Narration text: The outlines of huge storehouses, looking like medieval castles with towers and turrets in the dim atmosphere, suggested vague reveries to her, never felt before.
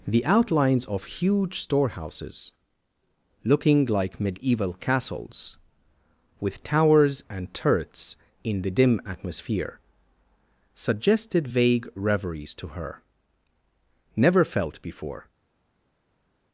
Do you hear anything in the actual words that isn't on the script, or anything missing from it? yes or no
no